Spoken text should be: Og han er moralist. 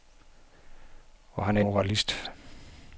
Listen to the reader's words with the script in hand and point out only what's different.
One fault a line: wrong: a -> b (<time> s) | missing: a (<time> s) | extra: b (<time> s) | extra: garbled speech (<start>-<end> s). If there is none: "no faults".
no faults